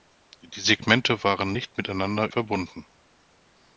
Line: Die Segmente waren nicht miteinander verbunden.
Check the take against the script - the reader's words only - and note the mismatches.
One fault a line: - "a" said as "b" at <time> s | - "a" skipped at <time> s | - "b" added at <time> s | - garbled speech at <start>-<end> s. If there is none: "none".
none